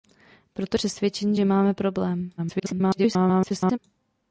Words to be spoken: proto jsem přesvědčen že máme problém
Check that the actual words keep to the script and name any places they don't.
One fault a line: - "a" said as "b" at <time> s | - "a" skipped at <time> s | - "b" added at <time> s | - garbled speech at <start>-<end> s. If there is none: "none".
- "jsem" skipped at 0.8 s
- garbled speech at 2.4-3.8 s